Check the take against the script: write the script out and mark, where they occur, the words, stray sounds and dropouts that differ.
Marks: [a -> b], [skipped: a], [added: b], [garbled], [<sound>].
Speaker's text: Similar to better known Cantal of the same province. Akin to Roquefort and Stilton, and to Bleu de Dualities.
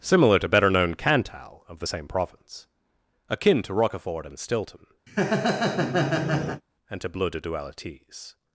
Similar to better known Cantal of the same province. Akin to Roquefort and Stilton, [laugh] and to Bleu de Dualities.